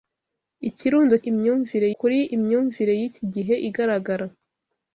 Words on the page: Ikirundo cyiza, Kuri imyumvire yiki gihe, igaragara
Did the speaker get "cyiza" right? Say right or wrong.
wrong